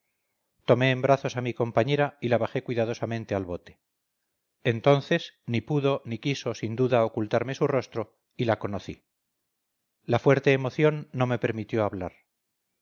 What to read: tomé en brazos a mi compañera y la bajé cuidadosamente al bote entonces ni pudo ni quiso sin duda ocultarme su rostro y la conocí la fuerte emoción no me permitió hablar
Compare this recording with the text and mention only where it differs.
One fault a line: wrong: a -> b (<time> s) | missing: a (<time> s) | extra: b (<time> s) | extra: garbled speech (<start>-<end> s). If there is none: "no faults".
no faults